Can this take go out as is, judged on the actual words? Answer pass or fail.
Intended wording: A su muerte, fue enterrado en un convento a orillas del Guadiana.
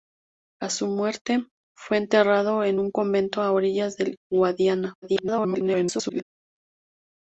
fail